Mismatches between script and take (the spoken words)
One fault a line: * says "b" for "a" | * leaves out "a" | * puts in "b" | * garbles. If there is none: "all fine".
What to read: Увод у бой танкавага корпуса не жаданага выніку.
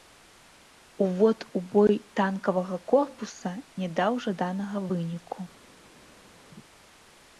* puts in "даў"